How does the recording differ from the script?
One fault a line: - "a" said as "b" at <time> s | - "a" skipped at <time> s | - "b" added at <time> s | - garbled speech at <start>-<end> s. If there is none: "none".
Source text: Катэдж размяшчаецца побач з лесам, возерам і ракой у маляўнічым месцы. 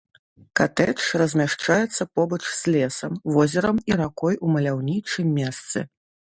none